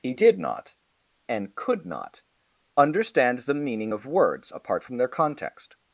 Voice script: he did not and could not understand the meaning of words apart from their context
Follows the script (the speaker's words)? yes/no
yes